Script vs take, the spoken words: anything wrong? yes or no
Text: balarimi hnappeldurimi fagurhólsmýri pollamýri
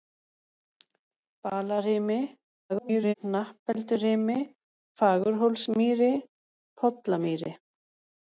yes